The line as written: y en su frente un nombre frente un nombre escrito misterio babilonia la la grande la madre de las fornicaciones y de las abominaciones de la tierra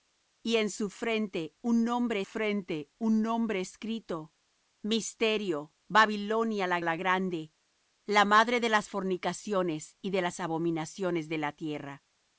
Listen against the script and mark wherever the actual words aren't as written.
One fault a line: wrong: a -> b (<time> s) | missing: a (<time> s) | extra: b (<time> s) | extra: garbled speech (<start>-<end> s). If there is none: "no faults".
no faults